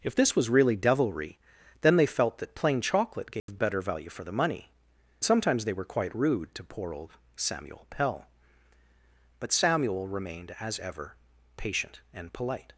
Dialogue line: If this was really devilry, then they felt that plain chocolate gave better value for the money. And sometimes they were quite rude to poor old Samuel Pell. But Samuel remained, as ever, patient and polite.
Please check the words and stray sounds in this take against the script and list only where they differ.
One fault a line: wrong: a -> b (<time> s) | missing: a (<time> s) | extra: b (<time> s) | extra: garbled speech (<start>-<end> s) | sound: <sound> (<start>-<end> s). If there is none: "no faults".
sound: dropout (3.4-3.5 s)
missing: And (4.7 s)